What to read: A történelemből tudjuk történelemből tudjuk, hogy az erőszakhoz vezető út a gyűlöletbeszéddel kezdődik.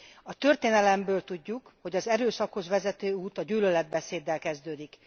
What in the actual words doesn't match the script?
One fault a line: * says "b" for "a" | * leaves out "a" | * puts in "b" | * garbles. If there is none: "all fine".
* leaves out "történelemből tudjuk"